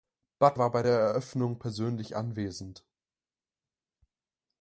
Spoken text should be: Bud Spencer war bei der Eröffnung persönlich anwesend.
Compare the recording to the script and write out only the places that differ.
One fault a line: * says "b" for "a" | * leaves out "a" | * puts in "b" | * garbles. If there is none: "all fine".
* leaves out "Spencer"